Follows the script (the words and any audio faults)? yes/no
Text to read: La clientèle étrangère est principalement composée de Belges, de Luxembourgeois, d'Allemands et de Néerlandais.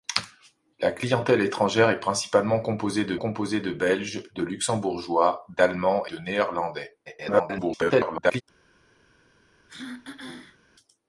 no